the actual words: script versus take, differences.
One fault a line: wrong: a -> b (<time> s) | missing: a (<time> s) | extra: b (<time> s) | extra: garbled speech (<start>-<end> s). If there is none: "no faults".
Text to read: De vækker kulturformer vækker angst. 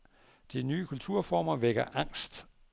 wrong: vækker -> nye (0.6 s)